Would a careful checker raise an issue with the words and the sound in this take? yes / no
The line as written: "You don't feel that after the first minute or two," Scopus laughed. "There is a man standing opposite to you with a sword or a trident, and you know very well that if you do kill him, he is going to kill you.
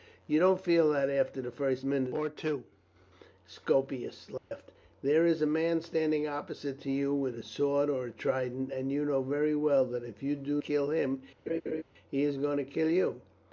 yes